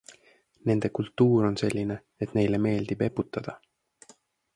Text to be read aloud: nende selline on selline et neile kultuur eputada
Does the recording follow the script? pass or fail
fail